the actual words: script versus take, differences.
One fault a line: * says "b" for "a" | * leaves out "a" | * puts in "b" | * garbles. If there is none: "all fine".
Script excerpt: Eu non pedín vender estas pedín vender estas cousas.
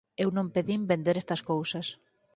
* leaves out "pedín vender estas"